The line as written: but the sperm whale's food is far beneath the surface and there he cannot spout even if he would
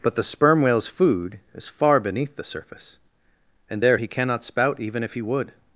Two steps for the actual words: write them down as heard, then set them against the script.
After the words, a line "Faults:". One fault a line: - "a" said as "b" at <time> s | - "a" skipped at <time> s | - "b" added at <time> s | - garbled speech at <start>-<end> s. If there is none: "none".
but the sperm whale's food is far beneath the surface and there he cannot spout even if he would
Faults:
none